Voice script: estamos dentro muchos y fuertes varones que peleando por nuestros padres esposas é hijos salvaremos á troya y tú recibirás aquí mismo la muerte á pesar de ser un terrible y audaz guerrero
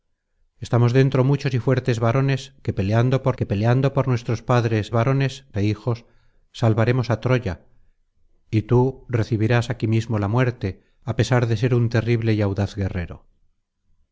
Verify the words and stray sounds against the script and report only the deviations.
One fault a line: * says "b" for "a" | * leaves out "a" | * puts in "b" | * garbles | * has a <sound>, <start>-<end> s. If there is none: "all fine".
* puts in "que peleando por"
* says "varones" for "esposas"